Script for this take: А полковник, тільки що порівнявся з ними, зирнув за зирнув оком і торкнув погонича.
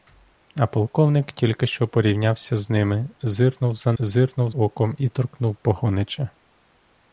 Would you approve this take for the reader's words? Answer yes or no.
yes